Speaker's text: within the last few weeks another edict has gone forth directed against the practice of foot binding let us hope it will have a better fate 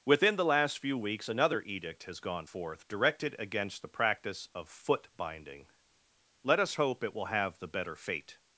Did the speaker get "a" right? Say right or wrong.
wrong